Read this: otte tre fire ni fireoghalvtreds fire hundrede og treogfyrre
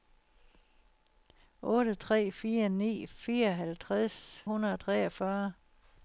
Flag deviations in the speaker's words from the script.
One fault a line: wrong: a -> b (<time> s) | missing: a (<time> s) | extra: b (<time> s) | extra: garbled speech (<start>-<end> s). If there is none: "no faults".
missing: fire (4.2 s)